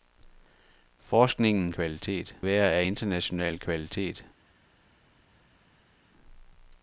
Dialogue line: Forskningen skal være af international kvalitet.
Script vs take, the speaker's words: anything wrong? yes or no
yes